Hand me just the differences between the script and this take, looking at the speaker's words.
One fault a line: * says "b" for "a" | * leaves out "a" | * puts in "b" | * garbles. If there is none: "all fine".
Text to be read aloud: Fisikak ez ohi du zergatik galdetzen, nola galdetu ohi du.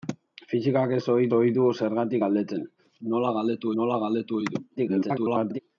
* puts in "ohi"
* puts in "nola galdetu"
* garbles